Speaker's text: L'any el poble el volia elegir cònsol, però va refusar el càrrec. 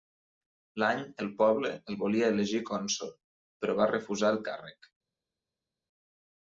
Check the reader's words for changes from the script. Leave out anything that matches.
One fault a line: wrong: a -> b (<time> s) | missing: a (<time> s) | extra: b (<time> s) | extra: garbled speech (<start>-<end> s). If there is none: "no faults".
no faults